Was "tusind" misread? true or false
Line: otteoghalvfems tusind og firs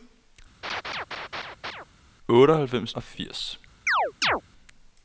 true